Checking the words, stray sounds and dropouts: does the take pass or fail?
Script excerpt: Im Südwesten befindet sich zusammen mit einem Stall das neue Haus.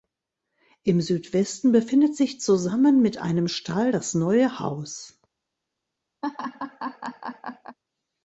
fail